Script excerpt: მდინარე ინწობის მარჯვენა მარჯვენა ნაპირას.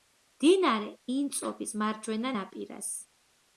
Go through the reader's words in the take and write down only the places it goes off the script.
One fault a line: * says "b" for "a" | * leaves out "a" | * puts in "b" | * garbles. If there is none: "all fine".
* leaves out "მარჯვენა"